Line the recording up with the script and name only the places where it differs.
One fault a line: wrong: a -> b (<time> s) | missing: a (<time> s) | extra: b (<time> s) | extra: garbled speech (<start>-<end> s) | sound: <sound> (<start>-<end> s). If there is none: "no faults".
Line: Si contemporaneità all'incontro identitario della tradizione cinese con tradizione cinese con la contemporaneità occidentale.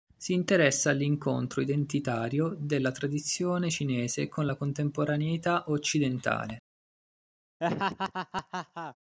wrong: contemporaneità -> interessa (0.3 s)
missing: tradizione cinese con (4.5 s)
sound: laugh (7.6-9.0 s)